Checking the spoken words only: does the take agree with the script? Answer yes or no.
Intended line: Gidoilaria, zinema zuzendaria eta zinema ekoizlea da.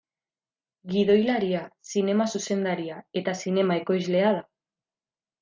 yes